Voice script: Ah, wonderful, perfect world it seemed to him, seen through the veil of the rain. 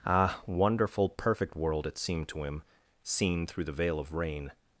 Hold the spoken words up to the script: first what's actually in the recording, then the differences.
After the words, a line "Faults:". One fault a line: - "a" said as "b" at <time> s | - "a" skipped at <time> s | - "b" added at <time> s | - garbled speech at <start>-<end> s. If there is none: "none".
Ah, wonderful, perfect world it seemed to him, seen through the veil of rain.
Faults:
- "the" skipped at 4.1 s